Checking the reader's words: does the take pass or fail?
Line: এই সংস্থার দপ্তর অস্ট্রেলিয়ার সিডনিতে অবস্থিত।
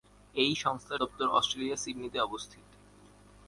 pass